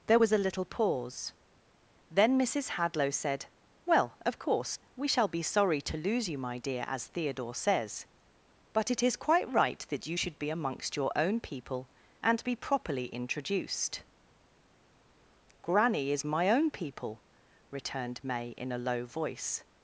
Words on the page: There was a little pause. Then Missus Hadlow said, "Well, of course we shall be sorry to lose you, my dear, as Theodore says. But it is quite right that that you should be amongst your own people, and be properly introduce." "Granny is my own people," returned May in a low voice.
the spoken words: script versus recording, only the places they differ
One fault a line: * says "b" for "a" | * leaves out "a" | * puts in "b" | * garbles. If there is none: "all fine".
* leaves out "that"
* says "introduced" for "introduce"